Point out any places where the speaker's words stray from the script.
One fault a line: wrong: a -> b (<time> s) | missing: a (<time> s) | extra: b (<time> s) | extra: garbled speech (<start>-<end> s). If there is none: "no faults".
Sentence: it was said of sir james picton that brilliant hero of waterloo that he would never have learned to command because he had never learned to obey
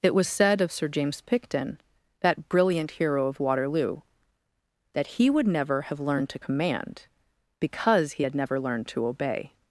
no faults